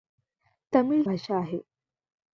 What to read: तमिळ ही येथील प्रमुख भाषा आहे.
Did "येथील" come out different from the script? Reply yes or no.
yes